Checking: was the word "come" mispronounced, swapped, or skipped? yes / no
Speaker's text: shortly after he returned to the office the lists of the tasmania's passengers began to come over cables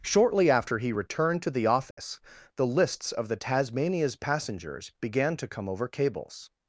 no